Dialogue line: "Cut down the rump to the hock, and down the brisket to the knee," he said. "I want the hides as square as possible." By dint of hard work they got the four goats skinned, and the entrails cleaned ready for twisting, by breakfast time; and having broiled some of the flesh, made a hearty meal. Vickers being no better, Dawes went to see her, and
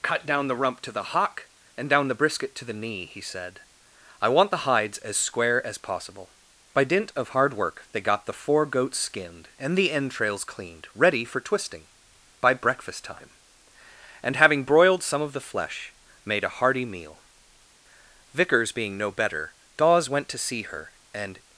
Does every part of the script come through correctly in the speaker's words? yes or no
yes